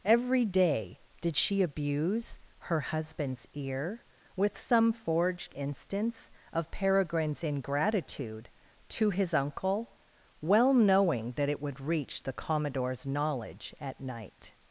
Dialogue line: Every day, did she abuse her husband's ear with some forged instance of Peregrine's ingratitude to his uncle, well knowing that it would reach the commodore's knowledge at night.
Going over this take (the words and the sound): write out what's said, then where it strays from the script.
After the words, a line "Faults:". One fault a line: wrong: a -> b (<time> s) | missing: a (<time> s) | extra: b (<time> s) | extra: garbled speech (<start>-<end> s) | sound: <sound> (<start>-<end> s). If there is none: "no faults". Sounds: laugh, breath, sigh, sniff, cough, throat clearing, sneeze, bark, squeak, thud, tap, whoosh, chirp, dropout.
Every day, did she abuse her husband's ear with some forged instance of Peregrine's ingratitude to his uncle, well knowing that it would reach the commodore's knowledge at night.
Faults:
no faults